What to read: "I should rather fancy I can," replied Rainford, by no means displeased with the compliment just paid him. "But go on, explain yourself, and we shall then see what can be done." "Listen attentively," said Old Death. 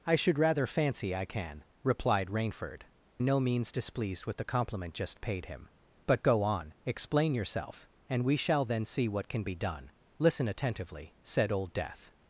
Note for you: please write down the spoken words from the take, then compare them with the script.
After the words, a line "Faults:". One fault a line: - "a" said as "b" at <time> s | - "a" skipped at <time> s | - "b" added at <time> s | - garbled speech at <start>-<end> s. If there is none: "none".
"I should rather fancy I can," replied Rainford, no means displeased with the compliment just paid him. "But go on, explain yourself, and we shall then see what can be done." "Listen attentively," said Old Death.
Faults:
- "by" skipped at 2.8 s